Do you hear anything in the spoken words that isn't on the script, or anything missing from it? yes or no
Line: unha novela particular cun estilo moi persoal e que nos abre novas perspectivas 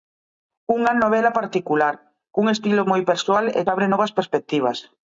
yes